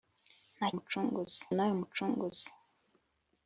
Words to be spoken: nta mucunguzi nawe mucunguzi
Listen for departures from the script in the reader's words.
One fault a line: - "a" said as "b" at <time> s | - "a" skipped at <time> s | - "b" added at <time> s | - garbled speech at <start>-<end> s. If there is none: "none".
none